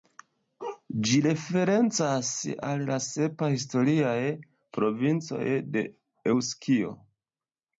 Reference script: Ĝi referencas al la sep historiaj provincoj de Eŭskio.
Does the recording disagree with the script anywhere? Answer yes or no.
no